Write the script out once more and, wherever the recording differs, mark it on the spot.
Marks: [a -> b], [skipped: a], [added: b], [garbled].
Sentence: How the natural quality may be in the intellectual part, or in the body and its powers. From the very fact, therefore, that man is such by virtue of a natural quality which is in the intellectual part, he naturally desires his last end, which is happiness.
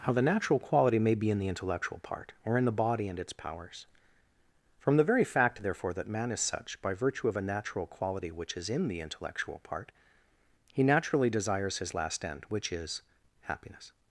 How the natural quality may be in the intellectual part, or in the body and its powers. From the very fact, therefore, that man is such by virtue of a natural quality which is in the intellectual part, he naturally desires his last end, which is happiness.